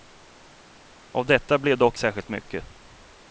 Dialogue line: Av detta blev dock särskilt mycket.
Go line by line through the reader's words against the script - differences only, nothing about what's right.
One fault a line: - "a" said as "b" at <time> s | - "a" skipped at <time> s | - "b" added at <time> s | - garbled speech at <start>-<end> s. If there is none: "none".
none